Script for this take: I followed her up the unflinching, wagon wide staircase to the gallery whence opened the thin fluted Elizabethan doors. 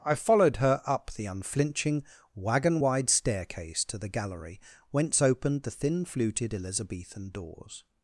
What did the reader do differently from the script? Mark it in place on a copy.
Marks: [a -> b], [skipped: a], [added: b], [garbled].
I followed her up the unflinching, wagon wide staircase to the gallery whence opened the thin fluted Elizabethan doors.